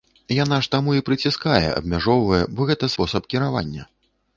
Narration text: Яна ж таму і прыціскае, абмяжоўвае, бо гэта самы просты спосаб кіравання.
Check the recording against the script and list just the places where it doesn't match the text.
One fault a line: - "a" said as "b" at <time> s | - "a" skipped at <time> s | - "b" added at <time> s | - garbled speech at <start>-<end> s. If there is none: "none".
- "самы просты" skipped at 2.9 s